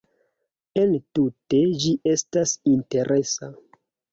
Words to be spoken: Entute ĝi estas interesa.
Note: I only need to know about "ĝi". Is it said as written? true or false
true